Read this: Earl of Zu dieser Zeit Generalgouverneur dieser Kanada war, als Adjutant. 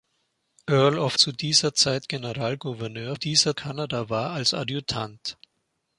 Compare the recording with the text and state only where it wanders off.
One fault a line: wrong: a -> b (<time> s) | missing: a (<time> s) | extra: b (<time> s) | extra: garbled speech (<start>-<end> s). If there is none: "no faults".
no faults